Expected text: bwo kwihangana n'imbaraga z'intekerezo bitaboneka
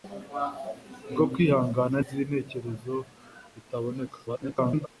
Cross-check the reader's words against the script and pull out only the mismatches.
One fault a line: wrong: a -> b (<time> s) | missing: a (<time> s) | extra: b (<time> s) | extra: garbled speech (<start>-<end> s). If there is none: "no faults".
missing: n'imbaraga (2.0 s)
extra: garbled speech (4.3-4.9 s)